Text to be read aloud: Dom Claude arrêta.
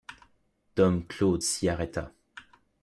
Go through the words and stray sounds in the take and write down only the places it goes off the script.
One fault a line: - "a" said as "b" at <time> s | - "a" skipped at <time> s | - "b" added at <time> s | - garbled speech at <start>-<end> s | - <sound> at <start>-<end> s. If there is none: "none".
- "s'y" added at 1.4 s